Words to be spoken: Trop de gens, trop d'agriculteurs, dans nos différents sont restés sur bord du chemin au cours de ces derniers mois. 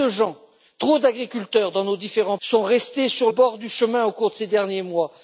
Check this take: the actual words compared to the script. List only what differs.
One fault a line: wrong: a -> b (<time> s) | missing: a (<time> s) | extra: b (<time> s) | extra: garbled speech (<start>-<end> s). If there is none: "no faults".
no faults